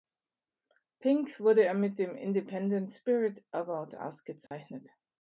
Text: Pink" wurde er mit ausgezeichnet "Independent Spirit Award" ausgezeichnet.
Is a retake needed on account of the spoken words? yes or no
yes